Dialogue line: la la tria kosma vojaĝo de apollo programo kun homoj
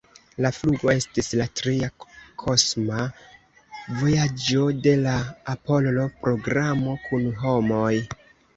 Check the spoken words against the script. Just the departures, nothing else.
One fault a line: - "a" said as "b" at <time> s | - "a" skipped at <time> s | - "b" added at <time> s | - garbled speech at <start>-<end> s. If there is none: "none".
- "flugo estis" added at 0.6 s
- "la" added at 5.0 s